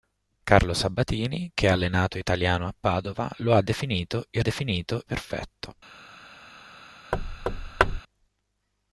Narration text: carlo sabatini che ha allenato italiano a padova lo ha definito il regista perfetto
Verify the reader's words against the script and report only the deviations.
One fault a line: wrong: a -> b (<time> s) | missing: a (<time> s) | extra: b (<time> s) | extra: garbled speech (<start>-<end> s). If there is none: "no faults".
wrong: regista -> definito (4.4 s)